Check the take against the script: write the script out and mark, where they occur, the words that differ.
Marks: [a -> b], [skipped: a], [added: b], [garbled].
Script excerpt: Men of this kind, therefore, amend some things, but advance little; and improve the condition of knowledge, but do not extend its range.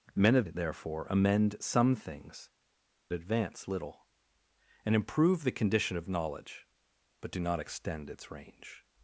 Men of [skipped: this kind,] therefore, amend some things, [skipped: but] advance little; and improve the condition of knowledge, but do not extend its range.